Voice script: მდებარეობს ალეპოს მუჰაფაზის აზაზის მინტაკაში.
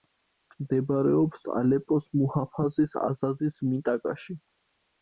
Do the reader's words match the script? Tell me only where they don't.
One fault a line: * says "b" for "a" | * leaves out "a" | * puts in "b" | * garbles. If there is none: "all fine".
all fine